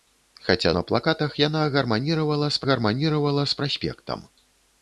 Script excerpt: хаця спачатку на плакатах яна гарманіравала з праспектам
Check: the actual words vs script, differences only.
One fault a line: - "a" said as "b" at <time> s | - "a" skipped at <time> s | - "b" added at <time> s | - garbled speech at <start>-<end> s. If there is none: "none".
- "спачатку" skipped at 0.7 s
- "гарманіравала з" added at 2.7 s